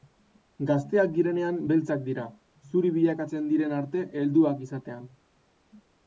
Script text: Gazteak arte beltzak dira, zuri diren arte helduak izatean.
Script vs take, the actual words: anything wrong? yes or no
yes